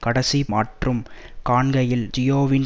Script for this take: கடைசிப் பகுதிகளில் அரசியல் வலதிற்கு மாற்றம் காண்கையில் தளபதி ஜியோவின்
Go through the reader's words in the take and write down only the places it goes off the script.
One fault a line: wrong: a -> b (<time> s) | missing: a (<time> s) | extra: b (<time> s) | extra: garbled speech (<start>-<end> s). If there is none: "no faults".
missing: பகுதிகளில் அரசியல் வலதிற்கு (0.5 s)
missing: தளபதி (2.1 s)